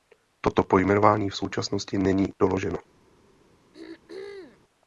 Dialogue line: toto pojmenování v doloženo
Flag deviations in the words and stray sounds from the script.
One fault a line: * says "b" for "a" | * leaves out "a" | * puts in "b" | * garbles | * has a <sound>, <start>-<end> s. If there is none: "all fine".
* puts in "současnosti není"
* has a throat clearing, 3.7-4.6 s